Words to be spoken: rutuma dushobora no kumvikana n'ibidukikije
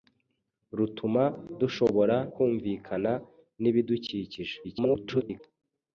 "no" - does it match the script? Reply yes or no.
no